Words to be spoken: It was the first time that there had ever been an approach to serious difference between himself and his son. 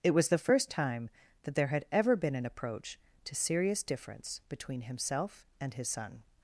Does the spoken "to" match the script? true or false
true